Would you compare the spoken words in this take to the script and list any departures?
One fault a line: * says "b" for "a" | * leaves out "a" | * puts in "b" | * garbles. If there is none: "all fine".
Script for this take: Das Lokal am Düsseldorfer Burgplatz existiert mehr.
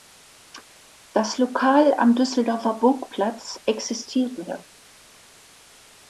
all fine